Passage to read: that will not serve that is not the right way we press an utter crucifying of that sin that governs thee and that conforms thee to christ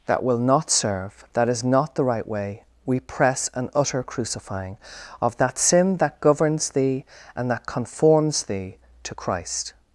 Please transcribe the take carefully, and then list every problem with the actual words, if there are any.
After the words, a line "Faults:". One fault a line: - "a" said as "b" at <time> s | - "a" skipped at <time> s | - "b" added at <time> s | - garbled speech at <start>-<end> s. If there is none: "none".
that will not serve that is not the right way we press an utter crucifying of that sin that governs thee and that conforms thee to christ
Faults:
none